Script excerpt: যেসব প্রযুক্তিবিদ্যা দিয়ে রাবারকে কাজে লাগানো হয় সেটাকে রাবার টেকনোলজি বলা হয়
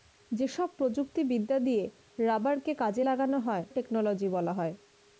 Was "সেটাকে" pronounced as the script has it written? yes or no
no